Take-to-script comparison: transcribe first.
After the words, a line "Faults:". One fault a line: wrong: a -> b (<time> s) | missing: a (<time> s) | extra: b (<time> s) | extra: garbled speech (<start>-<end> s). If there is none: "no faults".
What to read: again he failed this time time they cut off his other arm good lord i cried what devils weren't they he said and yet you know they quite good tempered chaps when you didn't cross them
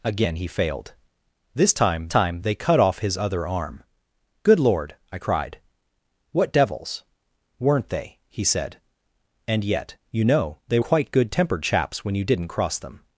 again he failed this time time they cut off his other arm good lord i cried what devils weren't they he said and yet you know they quite good tempered chaps when you didn't cross them
Faults:
no faults